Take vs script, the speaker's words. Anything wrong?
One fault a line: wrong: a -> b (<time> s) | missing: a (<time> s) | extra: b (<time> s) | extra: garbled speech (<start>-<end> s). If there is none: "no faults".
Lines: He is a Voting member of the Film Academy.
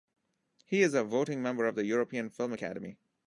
extra: European (1.9 s)